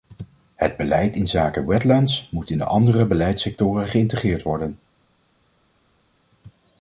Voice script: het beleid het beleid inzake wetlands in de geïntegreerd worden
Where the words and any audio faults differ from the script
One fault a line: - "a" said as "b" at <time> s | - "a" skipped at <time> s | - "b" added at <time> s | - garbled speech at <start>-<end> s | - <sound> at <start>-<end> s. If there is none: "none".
- "het beleid" skipped at 1.1 s
- "moet" added at 2.3 s
- "andere beleidssectoren" added at 2.6 s